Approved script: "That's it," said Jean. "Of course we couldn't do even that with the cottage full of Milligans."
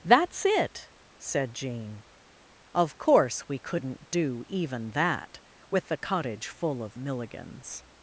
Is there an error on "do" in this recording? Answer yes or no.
no